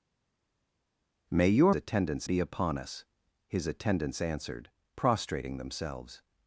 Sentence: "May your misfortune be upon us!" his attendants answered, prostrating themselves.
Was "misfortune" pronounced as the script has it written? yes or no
no